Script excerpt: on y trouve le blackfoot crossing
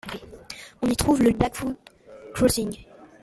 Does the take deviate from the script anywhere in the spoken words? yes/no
no